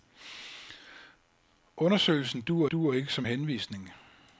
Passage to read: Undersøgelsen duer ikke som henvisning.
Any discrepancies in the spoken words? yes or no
yes